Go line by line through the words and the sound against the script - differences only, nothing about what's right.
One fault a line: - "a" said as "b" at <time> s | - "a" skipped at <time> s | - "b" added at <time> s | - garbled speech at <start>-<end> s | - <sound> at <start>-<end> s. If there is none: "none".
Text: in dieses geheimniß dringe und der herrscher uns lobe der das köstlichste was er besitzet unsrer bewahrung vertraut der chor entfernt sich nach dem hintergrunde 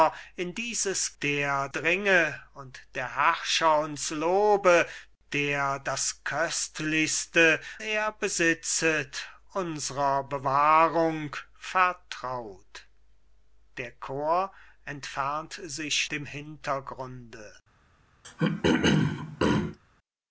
- "geheimniß" said as "der" at 1.2 s
- "was" skipped at 7.6 s
- "nach" skipped at 16.1 s
- throat clearing at 18.2-19.8 s